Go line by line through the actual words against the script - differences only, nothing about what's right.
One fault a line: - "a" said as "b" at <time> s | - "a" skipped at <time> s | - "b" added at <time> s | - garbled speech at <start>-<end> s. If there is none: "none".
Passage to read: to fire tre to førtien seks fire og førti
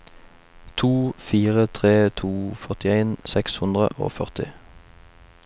- "fire" said as "hundre" at 3.6 s